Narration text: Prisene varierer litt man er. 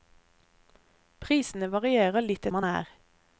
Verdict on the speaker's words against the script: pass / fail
pass